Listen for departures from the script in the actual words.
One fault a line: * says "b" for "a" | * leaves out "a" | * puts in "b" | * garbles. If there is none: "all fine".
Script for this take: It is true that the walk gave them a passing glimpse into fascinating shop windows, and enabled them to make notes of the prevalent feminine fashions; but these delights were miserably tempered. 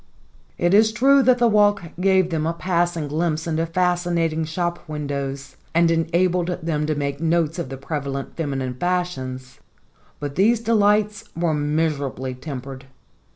all fine